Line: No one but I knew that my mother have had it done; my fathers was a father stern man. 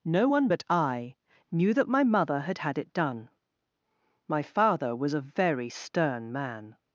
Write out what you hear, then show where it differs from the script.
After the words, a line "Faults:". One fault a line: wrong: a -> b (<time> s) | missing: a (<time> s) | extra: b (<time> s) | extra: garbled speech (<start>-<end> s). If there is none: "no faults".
No one but I knew that my mother had had it done; my father was a very stern man.
Faults:
wrong: have -> had (2.4 s)
wrong: fathers -> father (4.4 s)
wrong: father -> very (5.2 s)